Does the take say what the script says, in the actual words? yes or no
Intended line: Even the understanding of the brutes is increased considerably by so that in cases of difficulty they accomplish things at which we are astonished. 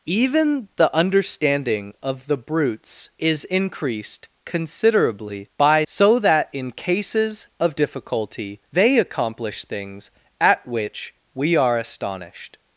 yes